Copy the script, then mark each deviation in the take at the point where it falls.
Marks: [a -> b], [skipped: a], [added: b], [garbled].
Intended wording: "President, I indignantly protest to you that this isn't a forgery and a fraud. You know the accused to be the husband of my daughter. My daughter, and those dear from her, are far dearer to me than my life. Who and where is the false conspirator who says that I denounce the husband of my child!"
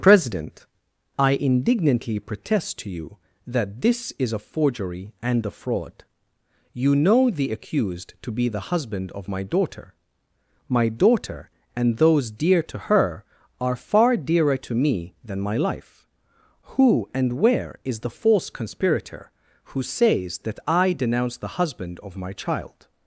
"President, I indignantly protest to you that this [isn't -> is] a forgery and a fraud. You know the accused to be the husband of my daughter. My daughter, and those dear [from -> to] her, are far dearer to me than my life. Who and where is the false conspirator who says that I denounce the husband of my child!"